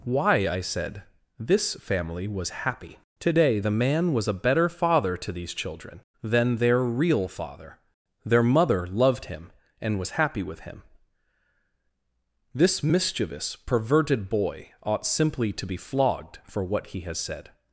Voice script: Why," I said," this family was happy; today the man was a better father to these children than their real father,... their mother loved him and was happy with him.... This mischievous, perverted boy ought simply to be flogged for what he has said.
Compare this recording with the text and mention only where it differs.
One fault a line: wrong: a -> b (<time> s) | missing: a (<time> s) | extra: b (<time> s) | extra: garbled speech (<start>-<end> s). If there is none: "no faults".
no faults